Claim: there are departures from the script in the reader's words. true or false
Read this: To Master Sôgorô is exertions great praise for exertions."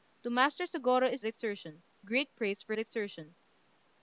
false